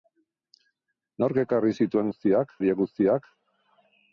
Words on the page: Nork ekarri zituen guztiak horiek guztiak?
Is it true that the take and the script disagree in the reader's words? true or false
false